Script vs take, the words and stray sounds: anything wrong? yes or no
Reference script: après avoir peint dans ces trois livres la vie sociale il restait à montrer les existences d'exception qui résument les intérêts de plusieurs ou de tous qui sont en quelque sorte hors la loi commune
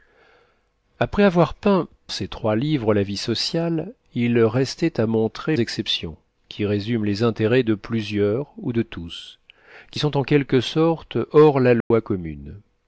yes